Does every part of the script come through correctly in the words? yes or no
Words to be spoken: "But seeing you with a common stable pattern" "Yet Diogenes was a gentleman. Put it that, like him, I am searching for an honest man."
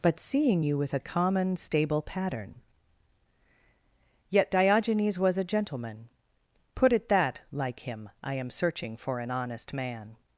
yes